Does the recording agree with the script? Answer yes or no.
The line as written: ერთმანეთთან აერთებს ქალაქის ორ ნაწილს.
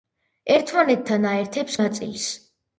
no